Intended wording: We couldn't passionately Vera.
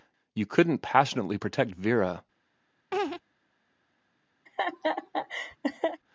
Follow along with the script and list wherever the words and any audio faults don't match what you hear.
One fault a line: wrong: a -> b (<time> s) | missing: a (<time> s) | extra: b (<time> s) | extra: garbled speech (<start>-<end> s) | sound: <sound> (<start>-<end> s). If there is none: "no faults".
wrong: We -> You (0.3 s)
extra: protect (1.3 s)
sound: laugh (2.9-3.2 s)
sound: laugh (4.5-6.0 s)